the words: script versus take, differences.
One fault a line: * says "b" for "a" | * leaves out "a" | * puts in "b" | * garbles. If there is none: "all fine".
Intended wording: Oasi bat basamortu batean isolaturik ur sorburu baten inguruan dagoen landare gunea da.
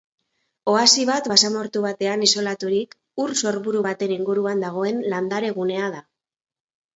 all fine